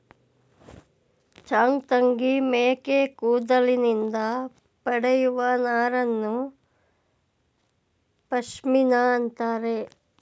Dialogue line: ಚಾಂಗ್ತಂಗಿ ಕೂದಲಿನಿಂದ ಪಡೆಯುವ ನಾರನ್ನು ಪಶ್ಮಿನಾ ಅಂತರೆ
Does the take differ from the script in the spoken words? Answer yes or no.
yes